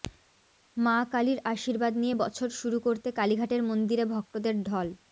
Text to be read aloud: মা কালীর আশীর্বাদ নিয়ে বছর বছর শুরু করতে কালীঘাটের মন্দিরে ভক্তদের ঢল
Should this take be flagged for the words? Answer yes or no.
yes